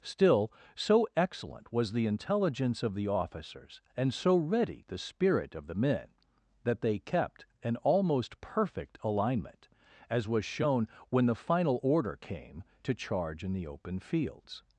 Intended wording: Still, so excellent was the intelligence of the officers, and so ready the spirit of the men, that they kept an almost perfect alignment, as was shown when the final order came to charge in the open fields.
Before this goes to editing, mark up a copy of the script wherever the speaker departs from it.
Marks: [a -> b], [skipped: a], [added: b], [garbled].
Still, so excellent was the intelligence of the officers, and so ready the spirit of the men, that they kept an almost perfect alignment, as was shown when the final order came to charge in the open fields.